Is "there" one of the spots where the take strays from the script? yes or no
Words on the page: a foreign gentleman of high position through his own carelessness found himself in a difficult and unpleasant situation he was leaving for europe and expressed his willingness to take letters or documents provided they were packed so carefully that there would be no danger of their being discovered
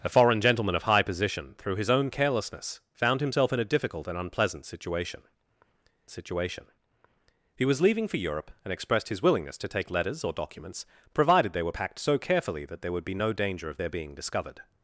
no